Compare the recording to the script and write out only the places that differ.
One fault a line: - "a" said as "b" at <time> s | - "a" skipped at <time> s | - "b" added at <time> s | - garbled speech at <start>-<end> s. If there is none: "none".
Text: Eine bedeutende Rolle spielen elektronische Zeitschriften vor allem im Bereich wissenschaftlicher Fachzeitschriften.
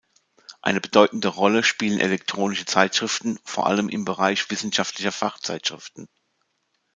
none